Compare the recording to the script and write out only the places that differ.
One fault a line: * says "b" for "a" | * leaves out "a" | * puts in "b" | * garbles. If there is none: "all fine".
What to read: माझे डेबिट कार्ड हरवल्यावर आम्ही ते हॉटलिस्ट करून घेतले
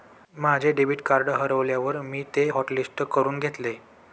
* says "मी" for "आम्ही"